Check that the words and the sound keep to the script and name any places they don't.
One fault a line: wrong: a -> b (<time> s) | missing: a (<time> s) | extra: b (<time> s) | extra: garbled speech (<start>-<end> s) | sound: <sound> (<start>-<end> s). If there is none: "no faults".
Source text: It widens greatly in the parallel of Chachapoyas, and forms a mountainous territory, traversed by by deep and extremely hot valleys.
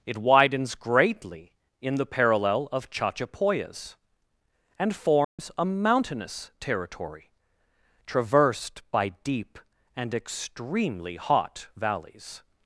sound: dropout (5.2-5.4 s)
missing: by (9.1 s)